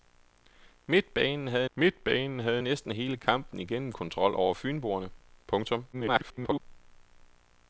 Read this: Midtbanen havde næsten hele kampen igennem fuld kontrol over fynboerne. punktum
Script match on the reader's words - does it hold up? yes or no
no